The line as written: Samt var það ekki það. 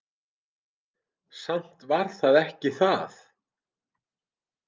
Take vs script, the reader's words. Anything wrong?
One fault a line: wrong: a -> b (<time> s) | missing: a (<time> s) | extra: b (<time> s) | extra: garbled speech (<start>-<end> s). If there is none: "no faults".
no faults